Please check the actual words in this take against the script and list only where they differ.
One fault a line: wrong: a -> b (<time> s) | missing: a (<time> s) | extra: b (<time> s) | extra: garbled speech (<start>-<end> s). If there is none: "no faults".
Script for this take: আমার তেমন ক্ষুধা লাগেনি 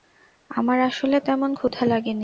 extra: আসলে (0.8 s)